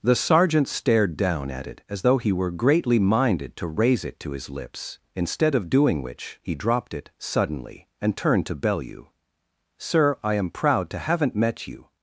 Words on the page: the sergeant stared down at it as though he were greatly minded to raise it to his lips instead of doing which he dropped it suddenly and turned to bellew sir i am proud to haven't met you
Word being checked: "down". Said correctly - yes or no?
yes